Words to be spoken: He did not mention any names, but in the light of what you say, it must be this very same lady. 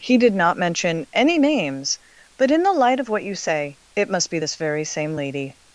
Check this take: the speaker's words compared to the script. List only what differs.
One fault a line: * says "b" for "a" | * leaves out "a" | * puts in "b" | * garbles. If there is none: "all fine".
all fine